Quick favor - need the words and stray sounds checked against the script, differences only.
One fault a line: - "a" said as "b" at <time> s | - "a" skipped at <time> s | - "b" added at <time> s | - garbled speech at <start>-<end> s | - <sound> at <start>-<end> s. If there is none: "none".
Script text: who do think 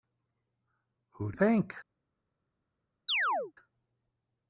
- chirp at 3.1-3.5 s